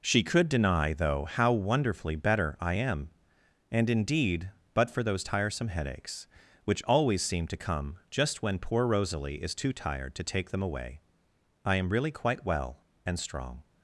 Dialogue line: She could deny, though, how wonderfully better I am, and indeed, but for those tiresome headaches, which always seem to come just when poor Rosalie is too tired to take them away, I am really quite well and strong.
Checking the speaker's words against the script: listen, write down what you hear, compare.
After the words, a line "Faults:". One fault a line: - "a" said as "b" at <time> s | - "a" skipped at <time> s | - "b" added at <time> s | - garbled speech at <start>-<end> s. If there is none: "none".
She could deny, though, how wonderfully better I am, and indeed, but for those tiresome headaches, which always seem to come just when poor Rosalie is too tired to take them away, I am really quite well and strong.
Faults:
none